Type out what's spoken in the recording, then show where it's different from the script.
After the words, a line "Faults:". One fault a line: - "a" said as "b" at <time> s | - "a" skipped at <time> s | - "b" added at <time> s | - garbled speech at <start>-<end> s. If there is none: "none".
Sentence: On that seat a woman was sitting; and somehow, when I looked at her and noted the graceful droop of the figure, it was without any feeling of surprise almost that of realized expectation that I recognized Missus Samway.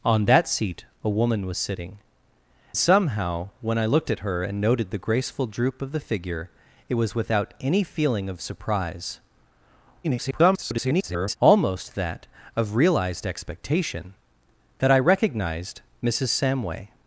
On that seat a woman was sitting; somehow, when I looked at her and noted the graceful droop of the figure, it was without any feeling of surprise [garbled] almost that of realized expectation that I recognized Missus Samway.
Faults:
- "and" skipped at 2.0 s
- garbled speech at 10.0-11.4 s